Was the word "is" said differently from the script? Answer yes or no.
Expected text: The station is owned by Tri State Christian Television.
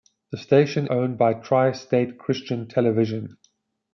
yes